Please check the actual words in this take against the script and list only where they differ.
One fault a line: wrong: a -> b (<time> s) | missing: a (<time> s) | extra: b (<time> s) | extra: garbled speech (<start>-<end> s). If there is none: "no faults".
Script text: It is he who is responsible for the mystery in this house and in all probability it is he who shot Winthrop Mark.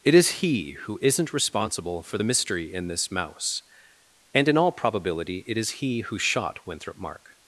wrong: is -> isn't (1.0 s)
wrong: house -> mouse (3.1 s)